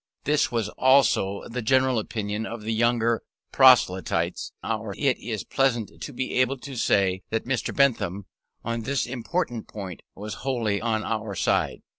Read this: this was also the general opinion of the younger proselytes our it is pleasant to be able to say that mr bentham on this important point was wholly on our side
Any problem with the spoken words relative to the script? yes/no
no